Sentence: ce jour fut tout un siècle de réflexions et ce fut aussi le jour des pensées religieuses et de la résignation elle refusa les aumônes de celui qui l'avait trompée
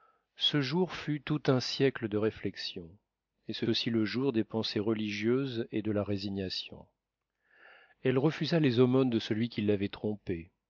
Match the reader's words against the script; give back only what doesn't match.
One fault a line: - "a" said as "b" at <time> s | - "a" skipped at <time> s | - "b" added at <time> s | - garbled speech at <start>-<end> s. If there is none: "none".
- "fut" skipped at 3.6 s